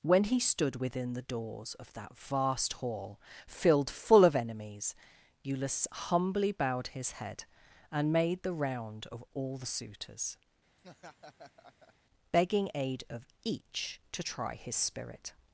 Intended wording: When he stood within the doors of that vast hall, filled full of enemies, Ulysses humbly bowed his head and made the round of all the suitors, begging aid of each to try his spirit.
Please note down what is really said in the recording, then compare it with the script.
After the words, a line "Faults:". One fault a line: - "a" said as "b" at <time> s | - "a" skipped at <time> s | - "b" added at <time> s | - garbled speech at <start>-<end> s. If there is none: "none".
When he stood within the doors of that vast hall, filled full of enemies, Ulysses humbly bowed his head and made the round of all the suitors, begging aid of each to try his spirit.
Faults:
none